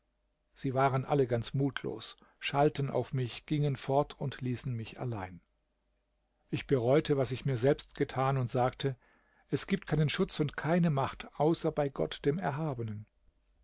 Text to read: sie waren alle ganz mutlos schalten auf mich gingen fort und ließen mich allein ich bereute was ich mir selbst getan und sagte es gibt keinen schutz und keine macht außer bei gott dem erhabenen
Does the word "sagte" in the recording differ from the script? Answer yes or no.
no